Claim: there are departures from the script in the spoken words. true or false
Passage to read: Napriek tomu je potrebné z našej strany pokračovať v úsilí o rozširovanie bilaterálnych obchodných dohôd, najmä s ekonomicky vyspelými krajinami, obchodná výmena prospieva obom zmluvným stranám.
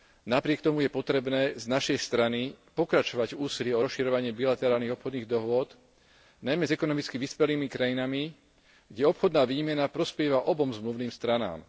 true